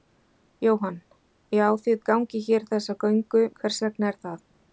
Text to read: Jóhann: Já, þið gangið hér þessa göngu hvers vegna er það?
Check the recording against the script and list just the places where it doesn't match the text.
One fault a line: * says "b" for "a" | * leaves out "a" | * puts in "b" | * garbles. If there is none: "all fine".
all fine